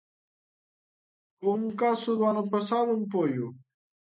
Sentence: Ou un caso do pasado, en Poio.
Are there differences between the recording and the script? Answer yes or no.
yes